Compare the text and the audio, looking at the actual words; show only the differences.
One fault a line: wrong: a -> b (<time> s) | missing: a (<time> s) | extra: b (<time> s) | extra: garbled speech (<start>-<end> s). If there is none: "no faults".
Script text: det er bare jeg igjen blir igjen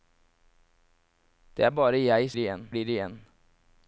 no faults